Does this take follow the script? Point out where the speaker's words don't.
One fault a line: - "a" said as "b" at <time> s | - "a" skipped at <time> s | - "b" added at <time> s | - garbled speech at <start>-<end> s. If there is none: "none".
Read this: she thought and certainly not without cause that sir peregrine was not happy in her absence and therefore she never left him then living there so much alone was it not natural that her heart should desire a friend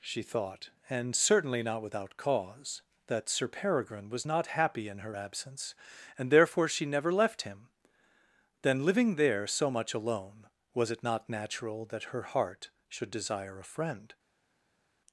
none